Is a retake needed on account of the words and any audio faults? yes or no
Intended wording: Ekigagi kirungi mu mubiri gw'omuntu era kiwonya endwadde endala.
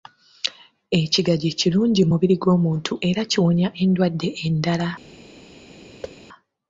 yes